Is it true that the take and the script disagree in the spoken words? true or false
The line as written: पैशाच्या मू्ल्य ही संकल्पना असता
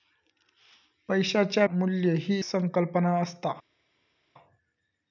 false